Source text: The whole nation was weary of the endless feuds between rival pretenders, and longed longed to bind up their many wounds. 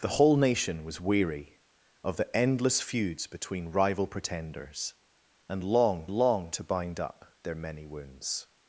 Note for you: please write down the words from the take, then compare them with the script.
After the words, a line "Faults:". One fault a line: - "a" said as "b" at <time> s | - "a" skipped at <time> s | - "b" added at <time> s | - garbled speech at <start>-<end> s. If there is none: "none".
The whole nation was weary of the endless feuds between rival pretenders, and longed longed to bind up their many wounds.
Faults:
none